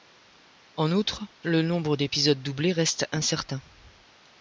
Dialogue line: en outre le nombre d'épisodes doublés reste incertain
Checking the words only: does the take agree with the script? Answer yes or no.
yes